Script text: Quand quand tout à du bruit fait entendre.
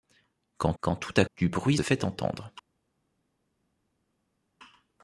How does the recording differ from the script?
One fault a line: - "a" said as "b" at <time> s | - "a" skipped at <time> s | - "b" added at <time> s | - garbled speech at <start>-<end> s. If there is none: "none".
none